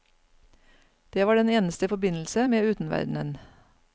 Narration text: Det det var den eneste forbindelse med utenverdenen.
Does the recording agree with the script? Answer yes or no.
no